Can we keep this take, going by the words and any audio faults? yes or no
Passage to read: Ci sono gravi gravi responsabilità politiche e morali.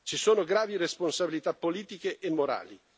no